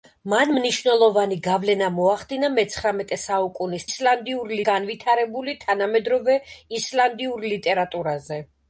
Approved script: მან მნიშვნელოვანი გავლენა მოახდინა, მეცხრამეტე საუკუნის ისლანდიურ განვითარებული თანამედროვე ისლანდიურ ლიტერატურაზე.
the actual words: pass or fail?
pass